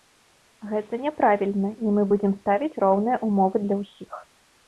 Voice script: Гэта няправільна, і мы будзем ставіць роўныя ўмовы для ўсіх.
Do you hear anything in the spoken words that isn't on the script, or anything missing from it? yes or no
no